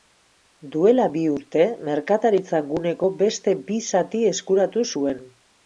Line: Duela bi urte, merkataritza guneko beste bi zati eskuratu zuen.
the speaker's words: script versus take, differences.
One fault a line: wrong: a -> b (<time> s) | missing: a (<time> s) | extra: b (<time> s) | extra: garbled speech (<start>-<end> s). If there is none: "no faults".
no faults